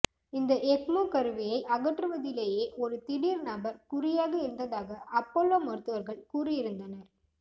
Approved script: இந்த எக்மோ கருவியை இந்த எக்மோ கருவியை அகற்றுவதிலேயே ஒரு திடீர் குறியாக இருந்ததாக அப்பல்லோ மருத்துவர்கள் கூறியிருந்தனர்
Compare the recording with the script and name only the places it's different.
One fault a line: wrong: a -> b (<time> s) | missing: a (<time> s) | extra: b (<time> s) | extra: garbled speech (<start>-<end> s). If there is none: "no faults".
missing: இந்த எக்மோ கருவியை (1.6 s)
extra: நபர் (3.5 s)